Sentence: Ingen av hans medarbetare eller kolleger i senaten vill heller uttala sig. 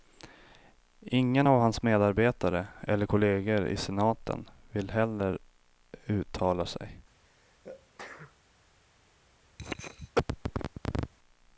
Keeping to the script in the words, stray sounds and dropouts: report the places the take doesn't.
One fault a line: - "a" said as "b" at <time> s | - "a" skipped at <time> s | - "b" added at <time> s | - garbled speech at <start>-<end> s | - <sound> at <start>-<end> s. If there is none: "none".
- sneeze at 7.2-8.4 s
- cough at 9.6-11.1 s